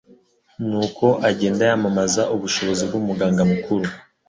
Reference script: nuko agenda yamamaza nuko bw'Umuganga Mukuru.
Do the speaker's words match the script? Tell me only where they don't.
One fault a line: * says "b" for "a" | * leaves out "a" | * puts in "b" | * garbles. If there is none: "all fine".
* says "ubushobozi" for "nuko"